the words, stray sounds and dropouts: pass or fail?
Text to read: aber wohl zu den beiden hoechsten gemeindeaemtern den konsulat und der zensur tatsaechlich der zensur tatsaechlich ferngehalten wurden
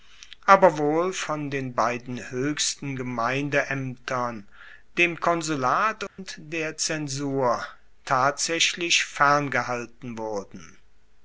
fail